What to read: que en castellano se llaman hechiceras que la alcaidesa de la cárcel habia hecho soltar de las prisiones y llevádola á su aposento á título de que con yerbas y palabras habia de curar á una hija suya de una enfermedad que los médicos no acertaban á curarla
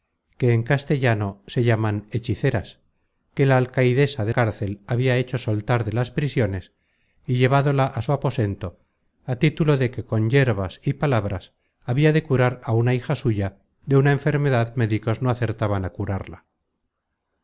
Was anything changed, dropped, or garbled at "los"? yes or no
yes